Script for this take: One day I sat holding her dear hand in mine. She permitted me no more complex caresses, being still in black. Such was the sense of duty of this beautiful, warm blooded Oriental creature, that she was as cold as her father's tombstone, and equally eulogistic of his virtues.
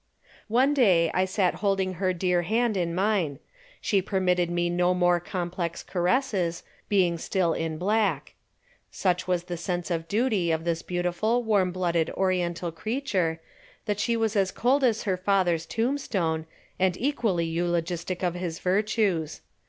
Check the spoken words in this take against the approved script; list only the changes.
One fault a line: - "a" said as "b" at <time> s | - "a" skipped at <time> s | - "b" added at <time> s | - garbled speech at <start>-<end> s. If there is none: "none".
none